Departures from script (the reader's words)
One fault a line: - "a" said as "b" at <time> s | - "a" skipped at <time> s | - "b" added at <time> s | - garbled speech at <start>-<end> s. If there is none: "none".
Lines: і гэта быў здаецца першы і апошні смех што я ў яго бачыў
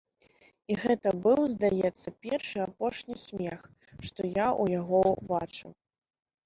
none